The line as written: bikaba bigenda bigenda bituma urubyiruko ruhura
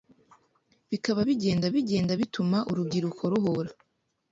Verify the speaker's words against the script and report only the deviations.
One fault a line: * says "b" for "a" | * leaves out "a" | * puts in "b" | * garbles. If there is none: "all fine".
all fine